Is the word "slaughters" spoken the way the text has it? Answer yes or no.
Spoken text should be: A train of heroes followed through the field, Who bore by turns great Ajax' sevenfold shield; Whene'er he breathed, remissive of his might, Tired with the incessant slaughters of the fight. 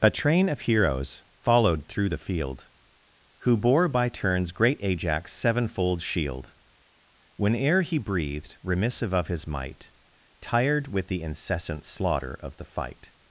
no